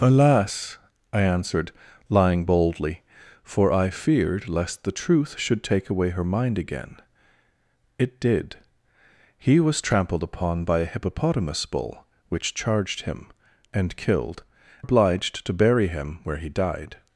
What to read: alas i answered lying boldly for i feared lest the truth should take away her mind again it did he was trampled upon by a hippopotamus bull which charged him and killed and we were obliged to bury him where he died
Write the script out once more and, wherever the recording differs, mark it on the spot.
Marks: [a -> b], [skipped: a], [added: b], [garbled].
alas i answered lying boldly for i feared lest the truth should take away her mind again it did he was trampled upon by a hippopotamus bull which charged him and killed [skipped: and we were] obliged to bury him where he died